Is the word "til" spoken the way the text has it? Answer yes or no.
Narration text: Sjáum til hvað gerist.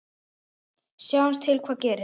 yes